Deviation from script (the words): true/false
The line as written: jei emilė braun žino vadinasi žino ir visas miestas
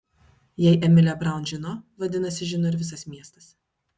false